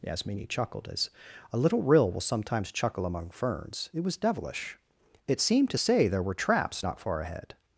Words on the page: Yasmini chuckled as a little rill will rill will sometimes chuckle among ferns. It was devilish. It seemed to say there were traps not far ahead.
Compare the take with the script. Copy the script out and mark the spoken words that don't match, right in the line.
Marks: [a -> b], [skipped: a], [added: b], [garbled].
Yasmini chuckled as a little rill will [skipped: rill will] sometimes chuckle among ferns. It was devilish. It seemed to say there were traps not far ahead.